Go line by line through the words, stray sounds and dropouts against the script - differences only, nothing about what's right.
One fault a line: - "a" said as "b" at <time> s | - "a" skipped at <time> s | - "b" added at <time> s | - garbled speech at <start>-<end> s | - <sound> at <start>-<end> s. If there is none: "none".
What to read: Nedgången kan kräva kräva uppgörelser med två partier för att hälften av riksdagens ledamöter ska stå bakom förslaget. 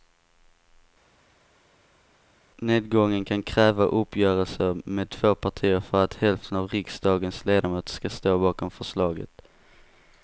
- "kräva" skipped at 3.8 s